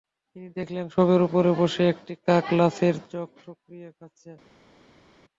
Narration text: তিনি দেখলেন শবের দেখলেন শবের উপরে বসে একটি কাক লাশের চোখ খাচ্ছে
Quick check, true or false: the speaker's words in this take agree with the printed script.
false